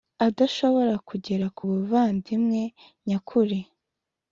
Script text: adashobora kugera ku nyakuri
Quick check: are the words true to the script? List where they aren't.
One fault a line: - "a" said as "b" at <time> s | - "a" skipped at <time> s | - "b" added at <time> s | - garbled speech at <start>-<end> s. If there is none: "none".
- "buvandimwe" added at 1.7 s